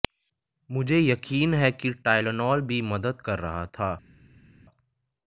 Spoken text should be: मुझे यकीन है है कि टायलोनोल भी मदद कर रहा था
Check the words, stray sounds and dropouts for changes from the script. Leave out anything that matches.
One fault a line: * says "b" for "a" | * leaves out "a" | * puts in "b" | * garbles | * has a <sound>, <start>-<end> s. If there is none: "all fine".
* leaves out "है"